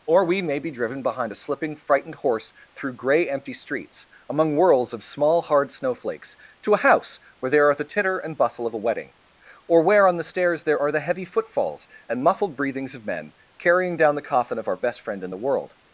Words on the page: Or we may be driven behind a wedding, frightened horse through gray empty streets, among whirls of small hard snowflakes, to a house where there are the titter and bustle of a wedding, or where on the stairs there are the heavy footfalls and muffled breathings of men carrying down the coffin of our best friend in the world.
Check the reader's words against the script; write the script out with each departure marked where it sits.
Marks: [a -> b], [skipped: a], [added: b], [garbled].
Or we may be driven behind a [wedding, -> slipping] frightened horse through gray empty streets, among whirls of small hard snowflakes, to a house where there are the titter and bustle of a wedding, or where on the stairs there are the heavy footfalls and muffled breathings of men carrying down the coffin of our best friend in the world.